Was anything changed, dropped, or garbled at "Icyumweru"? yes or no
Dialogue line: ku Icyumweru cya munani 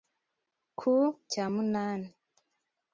yes